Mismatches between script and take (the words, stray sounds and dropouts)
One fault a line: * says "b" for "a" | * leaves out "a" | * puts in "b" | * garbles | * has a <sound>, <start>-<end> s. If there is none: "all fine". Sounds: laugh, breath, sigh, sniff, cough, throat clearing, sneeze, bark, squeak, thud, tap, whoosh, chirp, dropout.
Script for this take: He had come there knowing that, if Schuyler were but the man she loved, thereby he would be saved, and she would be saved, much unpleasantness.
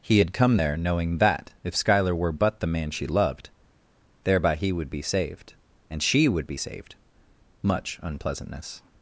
all fine